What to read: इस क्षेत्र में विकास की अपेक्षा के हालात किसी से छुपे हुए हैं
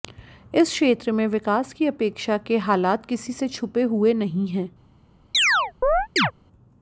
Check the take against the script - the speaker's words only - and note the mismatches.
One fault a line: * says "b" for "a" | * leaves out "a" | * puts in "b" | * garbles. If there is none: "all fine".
* puts in "नहीं"